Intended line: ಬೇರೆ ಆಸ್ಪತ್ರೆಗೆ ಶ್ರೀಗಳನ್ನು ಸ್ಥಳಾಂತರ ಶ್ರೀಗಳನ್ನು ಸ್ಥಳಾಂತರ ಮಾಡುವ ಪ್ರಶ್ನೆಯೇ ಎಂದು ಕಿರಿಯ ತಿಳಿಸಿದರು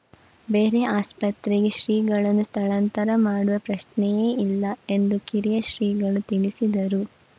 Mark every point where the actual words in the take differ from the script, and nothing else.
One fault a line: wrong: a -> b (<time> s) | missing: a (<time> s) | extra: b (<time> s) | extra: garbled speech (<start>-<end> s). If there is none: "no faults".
missing: ಶ್ರೀಗಳನ್ನು ಸ್ಥಳಾಂತರ (3.1 s)
extra: ಇಲ್ಲ (4.4 s)
extra: ಶ್ರೀಗಳು (5.7 s)